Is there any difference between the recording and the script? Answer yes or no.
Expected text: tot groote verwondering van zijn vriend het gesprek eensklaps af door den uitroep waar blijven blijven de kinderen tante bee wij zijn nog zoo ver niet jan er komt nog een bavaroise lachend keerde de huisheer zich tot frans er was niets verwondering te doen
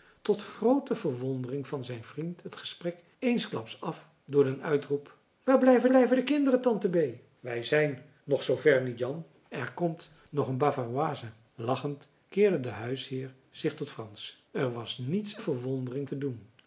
no